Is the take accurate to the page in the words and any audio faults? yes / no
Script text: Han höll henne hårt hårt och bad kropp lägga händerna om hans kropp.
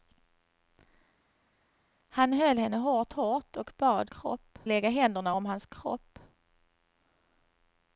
yes